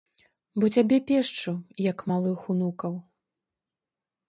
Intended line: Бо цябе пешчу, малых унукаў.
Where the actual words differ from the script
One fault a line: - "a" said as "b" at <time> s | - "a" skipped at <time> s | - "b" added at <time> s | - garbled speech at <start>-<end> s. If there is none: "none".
- "як" added at 1.9 s